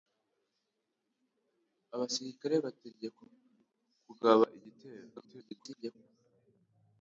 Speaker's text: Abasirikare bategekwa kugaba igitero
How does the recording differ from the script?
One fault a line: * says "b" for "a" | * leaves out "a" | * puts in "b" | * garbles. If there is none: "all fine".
* garbles